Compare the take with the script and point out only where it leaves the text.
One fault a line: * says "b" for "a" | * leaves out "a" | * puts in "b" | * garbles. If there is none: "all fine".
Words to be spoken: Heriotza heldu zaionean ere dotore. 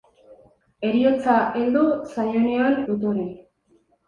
* leaves out "ere"